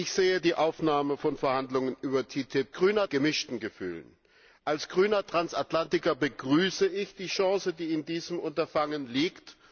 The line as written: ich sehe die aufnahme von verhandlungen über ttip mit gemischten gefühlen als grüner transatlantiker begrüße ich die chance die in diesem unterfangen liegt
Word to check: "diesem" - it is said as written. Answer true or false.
true